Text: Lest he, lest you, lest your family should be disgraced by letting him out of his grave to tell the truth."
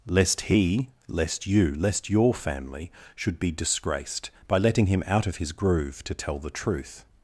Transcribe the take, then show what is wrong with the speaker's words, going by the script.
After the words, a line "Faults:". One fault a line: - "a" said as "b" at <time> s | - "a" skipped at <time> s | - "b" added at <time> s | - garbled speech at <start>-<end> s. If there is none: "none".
Lest he, lest you, lest your family should be disgraced by letting him out of his groove to tell the truth."
Faults:
- "grave" said as "groove" at 5.5 s